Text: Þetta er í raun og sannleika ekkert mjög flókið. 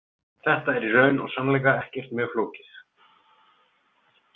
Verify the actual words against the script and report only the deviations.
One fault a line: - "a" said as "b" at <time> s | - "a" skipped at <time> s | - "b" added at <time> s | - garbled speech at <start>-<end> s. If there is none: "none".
none